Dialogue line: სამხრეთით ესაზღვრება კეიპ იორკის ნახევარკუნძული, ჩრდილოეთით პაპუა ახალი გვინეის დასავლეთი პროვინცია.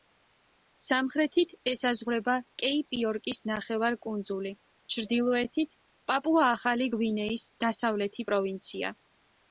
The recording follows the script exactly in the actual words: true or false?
true